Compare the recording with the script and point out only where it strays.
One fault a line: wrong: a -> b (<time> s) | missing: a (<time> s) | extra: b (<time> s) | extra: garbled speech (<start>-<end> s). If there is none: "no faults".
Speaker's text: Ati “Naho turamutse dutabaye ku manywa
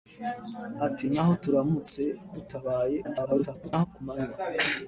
extra: garbled speech (3.0-3.9 s)